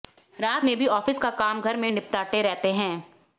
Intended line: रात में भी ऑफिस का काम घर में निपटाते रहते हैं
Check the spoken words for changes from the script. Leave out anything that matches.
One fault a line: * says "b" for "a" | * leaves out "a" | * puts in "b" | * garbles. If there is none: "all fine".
all fine